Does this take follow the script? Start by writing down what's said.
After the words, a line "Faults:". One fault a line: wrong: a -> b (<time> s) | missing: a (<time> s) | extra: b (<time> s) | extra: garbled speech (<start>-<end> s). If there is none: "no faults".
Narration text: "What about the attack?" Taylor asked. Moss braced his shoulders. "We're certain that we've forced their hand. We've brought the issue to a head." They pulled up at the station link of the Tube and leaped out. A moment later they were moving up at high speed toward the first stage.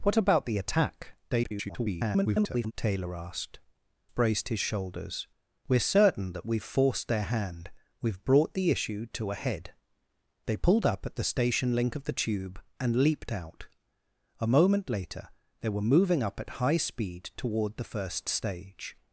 "What about the attack?" [garbled] Taylor asked. Braced his shoulders. "We're certain that we've forced their hand. We've brought the issue to a head." They pulled up at the station link of the Tube and leaped out. A moment later they were moving up at high speed toward the first stage.
Faults:
extra: garbled speech (1.3-2.7 s)
missing: Moss (3.6 s)